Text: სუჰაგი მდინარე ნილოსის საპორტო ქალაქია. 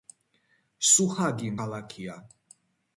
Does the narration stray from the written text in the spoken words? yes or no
yes